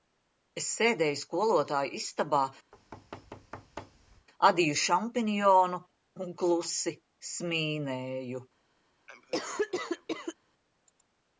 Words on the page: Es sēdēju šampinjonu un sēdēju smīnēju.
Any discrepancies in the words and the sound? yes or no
yes